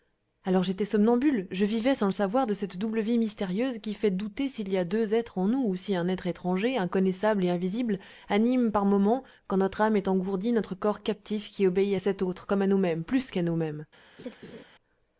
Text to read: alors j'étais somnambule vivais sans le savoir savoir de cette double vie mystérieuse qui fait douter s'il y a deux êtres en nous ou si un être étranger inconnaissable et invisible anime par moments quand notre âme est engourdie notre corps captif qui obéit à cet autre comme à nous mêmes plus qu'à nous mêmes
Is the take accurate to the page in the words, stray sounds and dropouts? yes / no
no